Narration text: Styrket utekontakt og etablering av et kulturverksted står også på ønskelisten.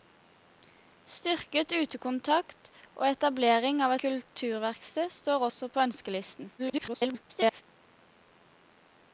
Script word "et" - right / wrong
wrong